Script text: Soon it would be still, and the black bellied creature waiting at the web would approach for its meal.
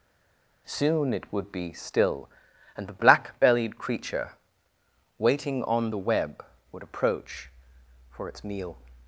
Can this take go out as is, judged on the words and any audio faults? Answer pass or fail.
fail